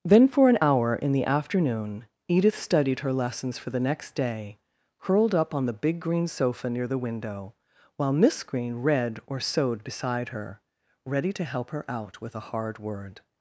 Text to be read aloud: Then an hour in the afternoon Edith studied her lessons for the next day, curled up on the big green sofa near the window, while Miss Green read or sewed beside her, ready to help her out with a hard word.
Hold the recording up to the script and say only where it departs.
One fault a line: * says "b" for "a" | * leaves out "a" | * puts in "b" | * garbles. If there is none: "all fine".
* puts in "for"